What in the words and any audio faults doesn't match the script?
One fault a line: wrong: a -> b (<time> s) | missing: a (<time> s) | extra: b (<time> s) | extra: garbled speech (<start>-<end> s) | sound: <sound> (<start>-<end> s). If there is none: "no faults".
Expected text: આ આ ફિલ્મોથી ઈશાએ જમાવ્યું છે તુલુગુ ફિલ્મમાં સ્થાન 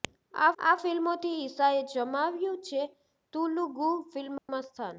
sound: dropout (4.4-4.5 s)